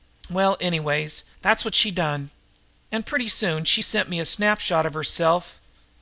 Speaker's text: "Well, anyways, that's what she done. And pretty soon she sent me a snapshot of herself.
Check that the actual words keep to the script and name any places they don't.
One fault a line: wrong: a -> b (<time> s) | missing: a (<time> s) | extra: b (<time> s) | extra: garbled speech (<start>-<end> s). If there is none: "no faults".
no faults